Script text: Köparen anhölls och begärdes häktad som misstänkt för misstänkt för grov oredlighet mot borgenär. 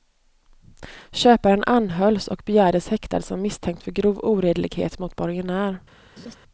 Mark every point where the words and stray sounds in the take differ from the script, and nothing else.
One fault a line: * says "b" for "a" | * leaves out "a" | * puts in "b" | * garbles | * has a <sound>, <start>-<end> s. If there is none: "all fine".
* leaves out "misstänkt för"
* has a laugh, 6.2-6.4 s